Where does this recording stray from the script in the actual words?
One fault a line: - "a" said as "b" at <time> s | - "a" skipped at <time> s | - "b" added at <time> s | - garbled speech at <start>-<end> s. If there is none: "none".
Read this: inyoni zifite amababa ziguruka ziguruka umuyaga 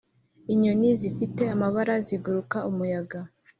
- "ziguruka" skipped at 2.6 s